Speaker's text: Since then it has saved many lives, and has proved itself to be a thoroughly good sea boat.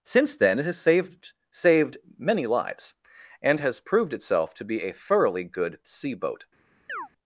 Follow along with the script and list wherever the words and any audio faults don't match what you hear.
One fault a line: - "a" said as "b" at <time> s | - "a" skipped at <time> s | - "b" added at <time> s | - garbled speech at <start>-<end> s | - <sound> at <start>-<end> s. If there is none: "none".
- "saved" added at 1.5 s
- chirp at 6.9-7.1 s